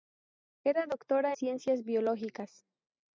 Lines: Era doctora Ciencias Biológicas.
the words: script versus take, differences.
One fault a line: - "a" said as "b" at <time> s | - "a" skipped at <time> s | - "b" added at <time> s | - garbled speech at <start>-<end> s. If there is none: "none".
none